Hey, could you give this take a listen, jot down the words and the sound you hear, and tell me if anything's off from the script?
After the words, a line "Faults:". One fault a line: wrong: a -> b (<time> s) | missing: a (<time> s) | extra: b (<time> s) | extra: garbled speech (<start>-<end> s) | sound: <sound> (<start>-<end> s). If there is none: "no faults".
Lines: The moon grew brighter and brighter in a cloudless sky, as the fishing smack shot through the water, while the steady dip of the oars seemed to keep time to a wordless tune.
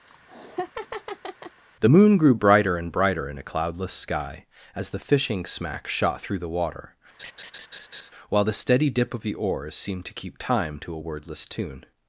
The moon grew brighter and brighter in a cloudless sky, as the fishing smack shot through the water, while the steady dip of the oars seemed to keep time to a wordless tune.
Faults:
sound: laugh (0.1-1.6 s)
sound: laugh (7.2-8.1 s)